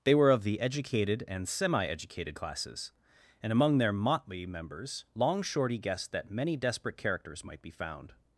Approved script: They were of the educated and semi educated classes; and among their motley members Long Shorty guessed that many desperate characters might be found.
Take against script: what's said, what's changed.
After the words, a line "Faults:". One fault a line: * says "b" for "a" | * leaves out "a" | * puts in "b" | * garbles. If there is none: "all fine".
They were of the educated and semi educated classes; and among their motley members Long Shorty guessed that many desperate characters might be found.
Faults:
all fine